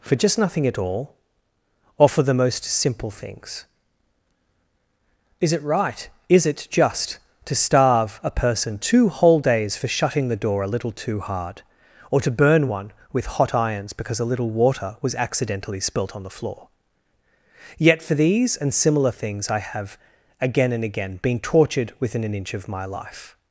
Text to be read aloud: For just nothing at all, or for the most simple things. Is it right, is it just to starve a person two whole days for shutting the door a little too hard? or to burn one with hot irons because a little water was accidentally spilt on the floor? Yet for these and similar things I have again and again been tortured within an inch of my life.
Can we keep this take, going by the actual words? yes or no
yes